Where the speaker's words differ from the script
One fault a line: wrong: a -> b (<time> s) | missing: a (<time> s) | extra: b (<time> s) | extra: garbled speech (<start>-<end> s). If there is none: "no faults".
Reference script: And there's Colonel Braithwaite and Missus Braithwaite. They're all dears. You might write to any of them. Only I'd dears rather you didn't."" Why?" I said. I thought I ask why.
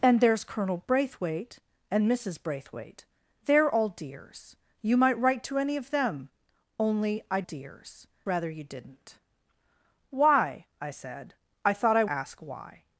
no faults